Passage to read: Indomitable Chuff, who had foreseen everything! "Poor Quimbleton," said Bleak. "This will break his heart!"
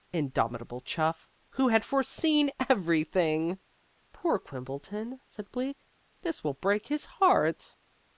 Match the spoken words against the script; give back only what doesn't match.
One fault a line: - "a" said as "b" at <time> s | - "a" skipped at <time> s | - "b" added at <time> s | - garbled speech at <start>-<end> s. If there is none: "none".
none